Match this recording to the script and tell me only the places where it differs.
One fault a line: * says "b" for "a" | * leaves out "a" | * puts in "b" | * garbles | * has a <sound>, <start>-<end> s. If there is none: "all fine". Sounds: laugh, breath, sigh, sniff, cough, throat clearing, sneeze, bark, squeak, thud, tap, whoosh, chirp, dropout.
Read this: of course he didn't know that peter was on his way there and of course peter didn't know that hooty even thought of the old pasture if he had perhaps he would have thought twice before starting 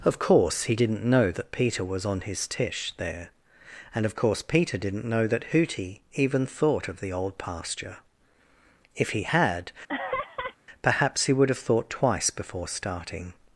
* says "tish" for "way"
* has a laugh, 9.9-10.6 s